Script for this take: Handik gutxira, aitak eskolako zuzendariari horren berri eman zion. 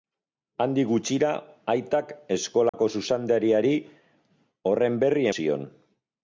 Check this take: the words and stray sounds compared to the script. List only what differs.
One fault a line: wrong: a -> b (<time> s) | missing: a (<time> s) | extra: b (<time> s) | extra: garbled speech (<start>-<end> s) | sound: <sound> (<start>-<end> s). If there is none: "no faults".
sound: dropout (2.7-2.7 s)
missing: eman (5.3 s)